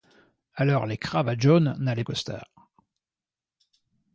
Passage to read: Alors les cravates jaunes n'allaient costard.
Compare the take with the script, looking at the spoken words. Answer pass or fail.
pass